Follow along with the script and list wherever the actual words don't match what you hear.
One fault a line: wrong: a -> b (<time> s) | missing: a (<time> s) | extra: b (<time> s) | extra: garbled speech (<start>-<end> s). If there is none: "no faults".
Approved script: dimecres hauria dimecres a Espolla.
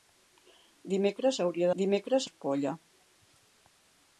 no faults